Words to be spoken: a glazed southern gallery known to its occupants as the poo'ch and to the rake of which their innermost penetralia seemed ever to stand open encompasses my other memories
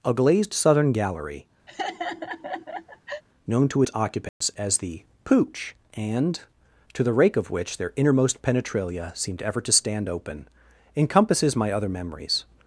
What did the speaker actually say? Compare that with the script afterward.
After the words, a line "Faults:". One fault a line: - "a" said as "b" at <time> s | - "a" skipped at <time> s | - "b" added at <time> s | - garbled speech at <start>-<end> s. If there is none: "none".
a glazed southern gallery known to its occupants as the poo'ch and to the rake of which their innermost penetralia seemed ever to stand open encompasses my other memories
Faults:
none